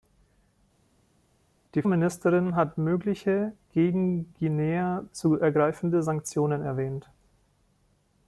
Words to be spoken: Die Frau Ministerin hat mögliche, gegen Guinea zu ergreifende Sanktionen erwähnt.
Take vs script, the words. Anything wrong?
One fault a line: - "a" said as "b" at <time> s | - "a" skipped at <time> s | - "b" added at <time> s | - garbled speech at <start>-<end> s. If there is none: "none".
- "Frau" skipped at 1.8 s